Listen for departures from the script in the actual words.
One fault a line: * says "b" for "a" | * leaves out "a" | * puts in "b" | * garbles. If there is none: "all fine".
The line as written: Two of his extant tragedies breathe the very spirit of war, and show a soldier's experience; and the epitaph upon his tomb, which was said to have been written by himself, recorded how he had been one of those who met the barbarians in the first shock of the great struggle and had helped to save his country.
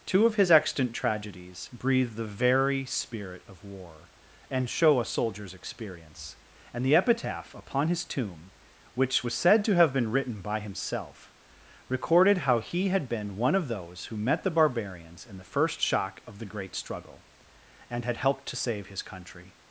all fine